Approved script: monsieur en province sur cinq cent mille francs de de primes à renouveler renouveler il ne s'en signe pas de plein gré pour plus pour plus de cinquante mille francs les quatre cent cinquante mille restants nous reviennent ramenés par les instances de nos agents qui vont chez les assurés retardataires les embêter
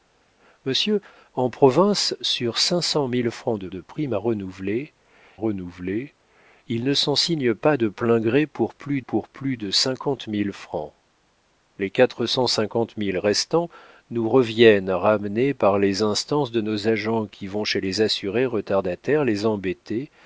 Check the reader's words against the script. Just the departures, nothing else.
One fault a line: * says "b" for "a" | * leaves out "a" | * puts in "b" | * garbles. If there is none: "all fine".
all fine